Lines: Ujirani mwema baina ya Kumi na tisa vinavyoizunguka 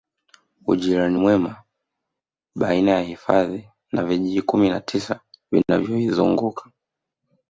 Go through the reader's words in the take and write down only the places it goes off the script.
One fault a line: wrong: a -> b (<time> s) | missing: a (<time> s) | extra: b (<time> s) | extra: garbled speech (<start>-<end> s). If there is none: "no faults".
extra: hifadhi na vijiji (3.0 s)